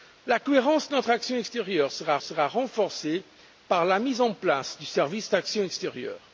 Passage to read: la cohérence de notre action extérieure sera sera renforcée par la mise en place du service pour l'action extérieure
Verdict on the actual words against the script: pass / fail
pass